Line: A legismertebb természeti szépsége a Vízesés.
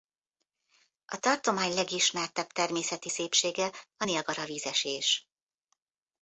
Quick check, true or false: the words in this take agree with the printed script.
false